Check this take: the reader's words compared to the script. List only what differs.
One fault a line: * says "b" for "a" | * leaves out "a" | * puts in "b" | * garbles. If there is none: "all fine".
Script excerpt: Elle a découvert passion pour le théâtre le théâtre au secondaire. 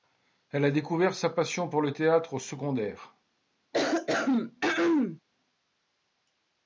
* puts in "sa"
* leaves out "le théâtre"